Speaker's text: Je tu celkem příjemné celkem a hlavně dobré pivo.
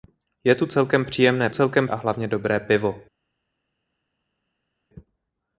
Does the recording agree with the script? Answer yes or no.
yes